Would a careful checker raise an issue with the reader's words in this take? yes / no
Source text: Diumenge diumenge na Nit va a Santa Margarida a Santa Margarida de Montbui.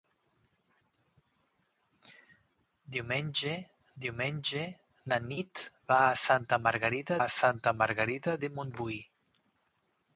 no